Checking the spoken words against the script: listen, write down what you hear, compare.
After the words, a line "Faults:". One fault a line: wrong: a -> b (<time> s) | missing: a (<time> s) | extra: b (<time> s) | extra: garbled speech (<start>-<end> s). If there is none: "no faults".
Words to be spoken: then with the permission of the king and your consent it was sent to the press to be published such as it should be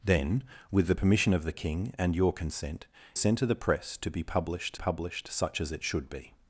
then with the permission of the king and your consent sent to the press to be published published such as it should be
Faults:
missing: it was (2.9 s)
extra: published (4.7 s)